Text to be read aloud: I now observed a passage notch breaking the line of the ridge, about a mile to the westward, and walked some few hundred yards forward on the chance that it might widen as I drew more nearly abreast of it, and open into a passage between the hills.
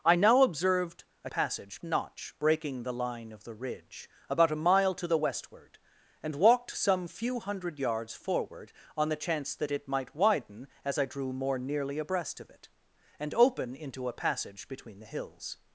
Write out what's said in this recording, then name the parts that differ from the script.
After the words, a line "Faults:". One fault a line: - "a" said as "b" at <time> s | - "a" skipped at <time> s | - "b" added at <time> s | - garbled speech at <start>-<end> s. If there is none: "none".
I now observed a passage notch breaking the line of the ridge, about a mile to the westward, and walked some few hundred yards forward on the chance that it might widen as I drew more nearly abreast of it, and open into a passage between the hills.
Faults:
none